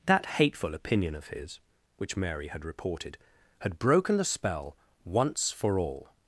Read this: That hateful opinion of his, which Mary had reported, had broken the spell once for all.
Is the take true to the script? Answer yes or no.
yes